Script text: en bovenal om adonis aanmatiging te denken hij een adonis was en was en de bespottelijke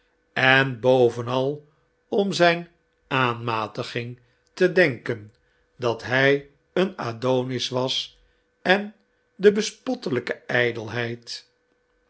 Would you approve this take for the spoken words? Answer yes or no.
no